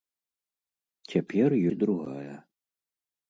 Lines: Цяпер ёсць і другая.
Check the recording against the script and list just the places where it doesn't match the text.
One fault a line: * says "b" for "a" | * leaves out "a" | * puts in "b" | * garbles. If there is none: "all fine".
* leaves out "ёсць"